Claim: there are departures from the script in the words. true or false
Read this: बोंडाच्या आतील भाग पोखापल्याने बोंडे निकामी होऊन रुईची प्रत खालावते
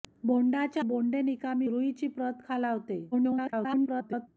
true